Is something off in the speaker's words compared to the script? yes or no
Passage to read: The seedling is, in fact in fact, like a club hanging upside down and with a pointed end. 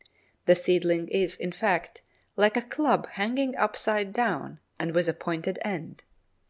yes